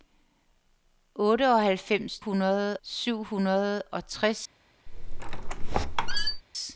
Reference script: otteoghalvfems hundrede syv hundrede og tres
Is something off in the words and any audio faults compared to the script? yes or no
yes